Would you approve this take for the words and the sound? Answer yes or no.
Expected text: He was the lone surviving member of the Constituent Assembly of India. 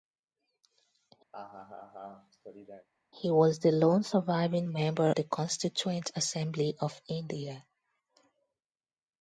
no